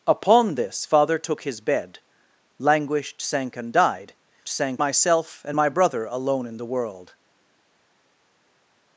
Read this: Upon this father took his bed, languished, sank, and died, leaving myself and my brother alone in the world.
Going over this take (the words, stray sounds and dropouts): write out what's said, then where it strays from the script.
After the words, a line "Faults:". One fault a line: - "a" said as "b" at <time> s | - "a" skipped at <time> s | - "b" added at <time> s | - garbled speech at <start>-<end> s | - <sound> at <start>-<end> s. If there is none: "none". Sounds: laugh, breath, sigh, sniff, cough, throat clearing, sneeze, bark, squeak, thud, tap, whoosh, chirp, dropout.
Upon this father took his bed, languished, sank, and died, sank myself and my brother alone in the world.
Faults:
- "leaving" said as "sank" at 4.5 s